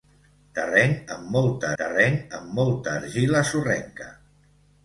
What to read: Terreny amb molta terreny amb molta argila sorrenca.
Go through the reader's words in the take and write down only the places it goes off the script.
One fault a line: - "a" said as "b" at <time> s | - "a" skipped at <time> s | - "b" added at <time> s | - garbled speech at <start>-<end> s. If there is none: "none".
none